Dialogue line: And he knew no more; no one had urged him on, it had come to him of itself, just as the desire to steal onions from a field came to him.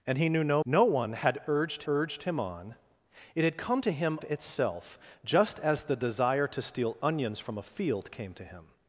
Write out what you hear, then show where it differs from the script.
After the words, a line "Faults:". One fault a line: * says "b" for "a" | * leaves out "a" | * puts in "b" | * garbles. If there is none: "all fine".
And he knew no; no one had urged urged him on, it had come to him itself, just as the desire to steal onions from a field came to him.
Faults:
* leaves out "more"
* puts in "urged"
* leaves out "of"